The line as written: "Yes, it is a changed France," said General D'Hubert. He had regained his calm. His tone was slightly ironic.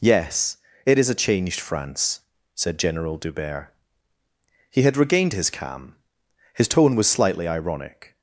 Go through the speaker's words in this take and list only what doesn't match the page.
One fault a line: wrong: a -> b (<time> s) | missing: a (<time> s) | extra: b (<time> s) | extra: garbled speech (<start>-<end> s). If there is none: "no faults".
no faults